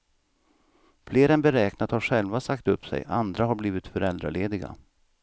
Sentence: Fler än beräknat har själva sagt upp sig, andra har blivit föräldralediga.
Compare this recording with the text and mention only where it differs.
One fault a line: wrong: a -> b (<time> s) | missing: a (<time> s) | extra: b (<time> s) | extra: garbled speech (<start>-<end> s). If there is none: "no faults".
no faults